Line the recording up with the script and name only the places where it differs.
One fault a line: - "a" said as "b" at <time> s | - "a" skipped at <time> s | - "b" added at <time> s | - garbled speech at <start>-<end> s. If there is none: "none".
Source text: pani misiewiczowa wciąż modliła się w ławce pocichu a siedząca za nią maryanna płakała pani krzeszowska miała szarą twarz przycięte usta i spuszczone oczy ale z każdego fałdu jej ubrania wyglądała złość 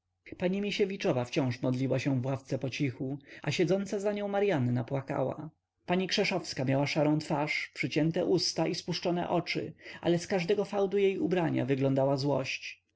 none